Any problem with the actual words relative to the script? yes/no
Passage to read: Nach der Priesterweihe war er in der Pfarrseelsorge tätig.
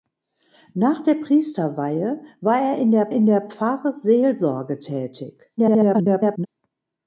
yes